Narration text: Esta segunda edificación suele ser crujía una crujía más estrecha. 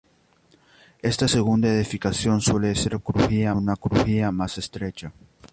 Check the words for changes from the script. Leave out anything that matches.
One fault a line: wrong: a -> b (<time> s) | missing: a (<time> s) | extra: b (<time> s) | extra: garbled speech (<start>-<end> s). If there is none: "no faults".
no faults